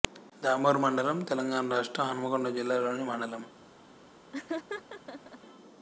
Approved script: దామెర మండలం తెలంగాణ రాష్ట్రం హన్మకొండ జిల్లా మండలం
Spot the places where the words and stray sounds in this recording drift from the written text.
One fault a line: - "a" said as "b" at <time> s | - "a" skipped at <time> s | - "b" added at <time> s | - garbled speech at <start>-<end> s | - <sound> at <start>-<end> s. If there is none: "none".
- "లోని" added at 2.8 s
- laugh at 4.3-5.4 s